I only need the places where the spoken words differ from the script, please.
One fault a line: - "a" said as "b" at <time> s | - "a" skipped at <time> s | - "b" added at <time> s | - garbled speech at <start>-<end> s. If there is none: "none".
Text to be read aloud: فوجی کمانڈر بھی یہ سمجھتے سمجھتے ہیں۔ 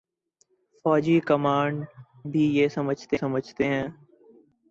none